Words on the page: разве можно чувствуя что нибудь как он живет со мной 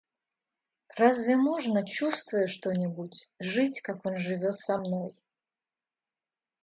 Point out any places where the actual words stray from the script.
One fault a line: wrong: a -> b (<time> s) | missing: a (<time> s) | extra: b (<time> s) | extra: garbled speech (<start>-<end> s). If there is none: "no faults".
extra: жить (3.4 s)